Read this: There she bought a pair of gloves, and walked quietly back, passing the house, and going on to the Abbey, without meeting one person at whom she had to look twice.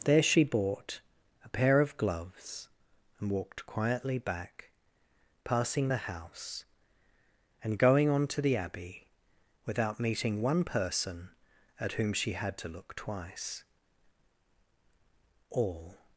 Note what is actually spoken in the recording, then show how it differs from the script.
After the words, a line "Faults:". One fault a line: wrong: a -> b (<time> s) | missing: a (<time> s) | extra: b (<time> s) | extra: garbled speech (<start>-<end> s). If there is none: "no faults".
There she bought a pair of gloves, and walked quietly back, passing the house, and going on to the Abbey, without meeting one person at whom she had to look twice. All
Faults:
extra: All (15.5 s)